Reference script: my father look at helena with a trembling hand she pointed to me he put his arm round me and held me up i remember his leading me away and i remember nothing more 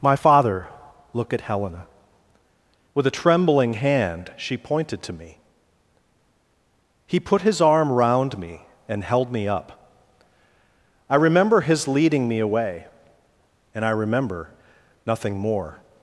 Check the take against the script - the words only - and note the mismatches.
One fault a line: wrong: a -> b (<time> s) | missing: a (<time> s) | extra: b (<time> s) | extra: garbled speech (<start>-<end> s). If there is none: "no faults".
no faults